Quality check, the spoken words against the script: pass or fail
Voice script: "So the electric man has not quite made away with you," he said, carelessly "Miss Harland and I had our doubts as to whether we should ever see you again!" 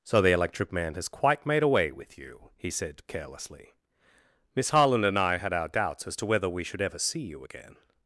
fail